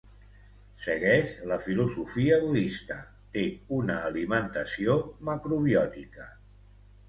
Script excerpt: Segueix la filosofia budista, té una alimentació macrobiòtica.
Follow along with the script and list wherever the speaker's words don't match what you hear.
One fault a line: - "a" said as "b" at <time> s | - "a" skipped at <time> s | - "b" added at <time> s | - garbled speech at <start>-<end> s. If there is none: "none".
none